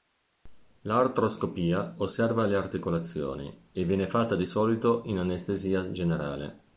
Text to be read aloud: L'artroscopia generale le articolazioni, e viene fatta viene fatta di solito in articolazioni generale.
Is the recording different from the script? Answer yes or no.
yes